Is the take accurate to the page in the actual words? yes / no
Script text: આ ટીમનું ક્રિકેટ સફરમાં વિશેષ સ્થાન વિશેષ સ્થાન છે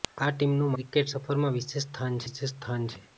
yes